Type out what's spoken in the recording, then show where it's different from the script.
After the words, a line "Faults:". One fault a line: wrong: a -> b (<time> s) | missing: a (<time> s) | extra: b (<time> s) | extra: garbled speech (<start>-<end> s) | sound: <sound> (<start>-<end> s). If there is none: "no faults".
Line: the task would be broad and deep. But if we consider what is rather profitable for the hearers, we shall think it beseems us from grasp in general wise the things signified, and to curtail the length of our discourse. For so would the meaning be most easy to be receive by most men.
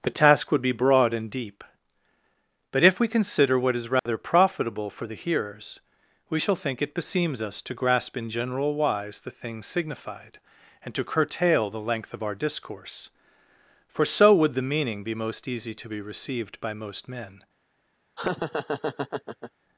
the task would be broad and deep. But if we consider what is rather profitable for the hearers, we shall think it beseems us to grasp in general wise the things signified, and to curtail the length of our discourse. For so would the meaning be most easy to be received by most men.
Faults:
sound: dropout (4.0-4.1 s)
wrong: from -> to (7.6 s)
wrong: receive -> received (16.0 s)
sound: laugh (18.2-19.5 s)